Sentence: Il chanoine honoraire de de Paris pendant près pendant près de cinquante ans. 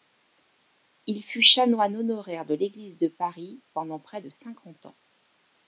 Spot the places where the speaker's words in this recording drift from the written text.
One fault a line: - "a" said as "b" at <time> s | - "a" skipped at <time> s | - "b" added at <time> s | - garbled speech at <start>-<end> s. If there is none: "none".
- "fut" added at 1.2 s
- "l'église" added at 2.5 s
- "pendant près" skipped at 4.2 s